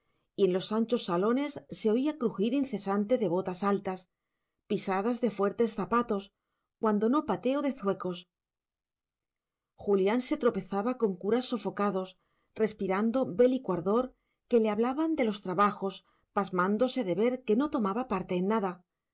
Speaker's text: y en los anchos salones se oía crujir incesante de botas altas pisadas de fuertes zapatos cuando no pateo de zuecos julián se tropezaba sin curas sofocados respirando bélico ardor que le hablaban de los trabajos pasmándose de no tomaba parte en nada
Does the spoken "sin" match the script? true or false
false